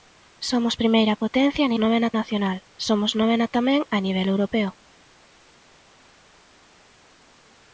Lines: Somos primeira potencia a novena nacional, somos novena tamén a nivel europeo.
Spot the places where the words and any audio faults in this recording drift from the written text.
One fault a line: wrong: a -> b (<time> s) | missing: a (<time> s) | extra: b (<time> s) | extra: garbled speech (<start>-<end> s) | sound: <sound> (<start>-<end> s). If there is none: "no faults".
no faults